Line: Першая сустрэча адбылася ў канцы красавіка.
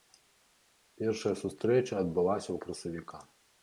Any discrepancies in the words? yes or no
yes